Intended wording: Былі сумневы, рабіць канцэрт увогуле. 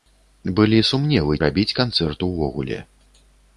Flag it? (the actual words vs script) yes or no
no